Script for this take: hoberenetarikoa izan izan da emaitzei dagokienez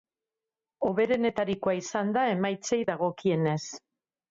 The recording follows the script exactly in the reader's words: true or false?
false